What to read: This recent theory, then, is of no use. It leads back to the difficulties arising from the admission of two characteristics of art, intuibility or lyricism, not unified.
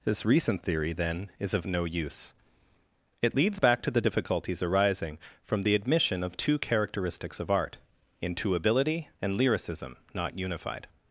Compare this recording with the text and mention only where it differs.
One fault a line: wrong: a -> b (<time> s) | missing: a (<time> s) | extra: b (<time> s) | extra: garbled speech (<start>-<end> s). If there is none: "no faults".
wrong: or -> and (9.2 s)